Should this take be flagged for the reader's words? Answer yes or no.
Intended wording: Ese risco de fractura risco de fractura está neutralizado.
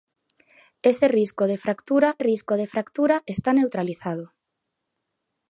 no